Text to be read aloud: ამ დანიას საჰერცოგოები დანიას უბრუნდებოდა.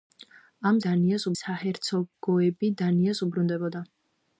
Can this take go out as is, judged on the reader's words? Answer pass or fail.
pass